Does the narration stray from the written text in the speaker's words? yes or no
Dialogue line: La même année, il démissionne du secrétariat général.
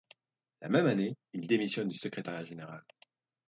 no